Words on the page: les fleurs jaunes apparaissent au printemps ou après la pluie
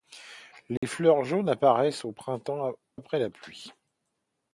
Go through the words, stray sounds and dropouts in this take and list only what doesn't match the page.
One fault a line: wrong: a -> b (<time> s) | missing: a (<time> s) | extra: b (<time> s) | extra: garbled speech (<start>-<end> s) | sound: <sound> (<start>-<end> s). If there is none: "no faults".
sound: dropout (0.8-0.8 s)
missing: ou (2.7 s)